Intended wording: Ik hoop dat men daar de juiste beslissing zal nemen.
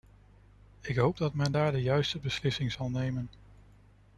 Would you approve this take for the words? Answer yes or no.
yes